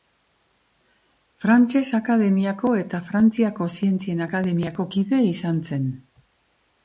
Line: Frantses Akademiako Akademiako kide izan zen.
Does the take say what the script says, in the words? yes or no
no